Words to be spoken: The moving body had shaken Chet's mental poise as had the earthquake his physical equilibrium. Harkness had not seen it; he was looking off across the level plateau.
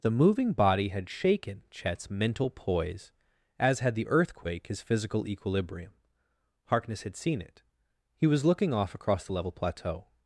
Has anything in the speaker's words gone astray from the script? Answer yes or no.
yes